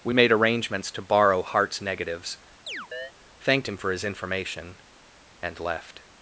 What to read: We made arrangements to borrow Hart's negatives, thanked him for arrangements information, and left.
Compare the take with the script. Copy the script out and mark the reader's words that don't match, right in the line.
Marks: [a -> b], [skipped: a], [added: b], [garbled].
We made arrangements to borrow Hart's negatives, thanked him for [arrangements -> his] information, and left.